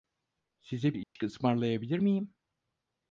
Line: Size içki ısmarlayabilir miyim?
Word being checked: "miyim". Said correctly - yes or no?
yes